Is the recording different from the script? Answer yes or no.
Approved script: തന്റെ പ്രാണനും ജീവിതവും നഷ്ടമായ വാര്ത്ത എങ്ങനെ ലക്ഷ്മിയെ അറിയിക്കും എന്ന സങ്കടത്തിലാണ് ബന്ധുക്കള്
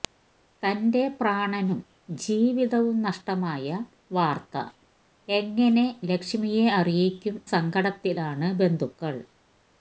yes